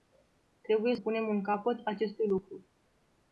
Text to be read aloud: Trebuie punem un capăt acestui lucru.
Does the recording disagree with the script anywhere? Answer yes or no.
no